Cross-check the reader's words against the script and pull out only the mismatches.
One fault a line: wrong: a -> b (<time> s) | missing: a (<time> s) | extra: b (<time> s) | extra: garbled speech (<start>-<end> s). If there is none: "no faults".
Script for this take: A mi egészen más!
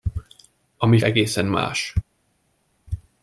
no faults